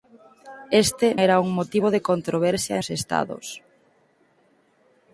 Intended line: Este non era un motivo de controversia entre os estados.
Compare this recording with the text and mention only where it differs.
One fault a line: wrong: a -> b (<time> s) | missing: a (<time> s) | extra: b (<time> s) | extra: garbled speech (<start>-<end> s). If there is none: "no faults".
missing: non (1.1 s)
missing: entre (2.8 s)